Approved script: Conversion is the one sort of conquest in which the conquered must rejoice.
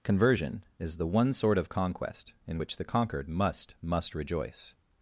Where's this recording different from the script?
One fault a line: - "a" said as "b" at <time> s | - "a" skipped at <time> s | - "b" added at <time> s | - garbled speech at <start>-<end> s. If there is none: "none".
- "must" added at 3.8 s